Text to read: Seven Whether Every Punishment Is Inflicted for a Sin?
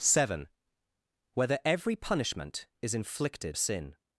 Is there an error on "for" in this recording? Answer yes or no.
yes